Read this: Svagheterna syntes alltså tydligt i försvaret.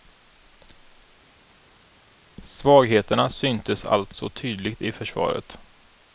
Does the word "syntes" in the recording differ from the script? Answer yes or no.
no